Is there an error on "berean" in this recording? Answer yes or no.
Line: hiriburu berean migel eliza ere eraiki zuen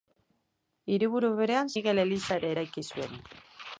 no